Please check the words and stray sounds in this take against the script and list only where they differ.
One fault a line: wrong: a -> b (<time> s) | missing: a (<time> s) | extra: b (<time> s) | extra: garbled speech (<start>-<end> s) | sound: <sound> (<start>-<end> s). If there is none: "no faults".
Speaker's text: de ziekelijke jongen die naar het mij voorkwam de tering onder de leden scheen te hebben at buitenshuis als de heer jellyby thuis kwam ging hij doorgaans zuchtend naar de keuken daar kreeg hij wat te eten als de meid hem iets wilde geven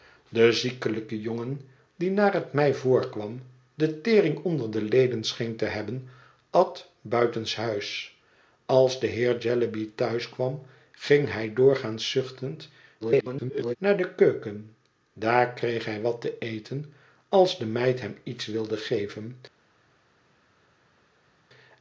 extra: garbled speech (13.0-13.8 s)